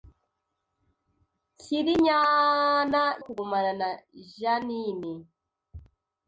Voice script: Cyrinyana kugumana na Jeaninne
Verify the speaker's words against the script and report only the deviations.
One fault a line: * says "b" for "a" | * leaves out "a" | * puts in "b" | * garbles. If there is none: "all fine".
all fine